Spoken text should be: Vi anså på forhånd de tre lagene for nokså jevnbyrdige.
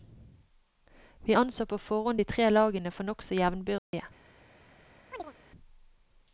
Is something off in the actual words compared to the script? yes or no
no